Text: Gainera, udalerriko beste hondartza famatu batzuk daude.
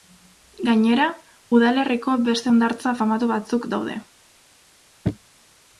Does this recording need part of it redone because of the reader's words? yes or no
no